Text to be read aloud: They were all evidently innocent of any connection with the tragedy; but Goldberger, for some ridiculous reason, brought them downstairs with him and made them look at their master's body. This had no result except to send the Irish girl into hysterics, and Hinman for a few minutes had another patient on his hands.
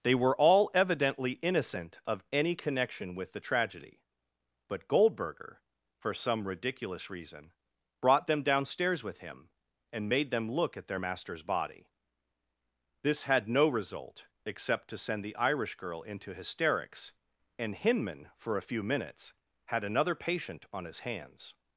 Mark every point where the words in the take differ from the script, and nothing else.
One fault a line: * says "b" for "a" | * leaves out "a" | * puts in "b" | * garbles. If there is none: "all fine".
all fine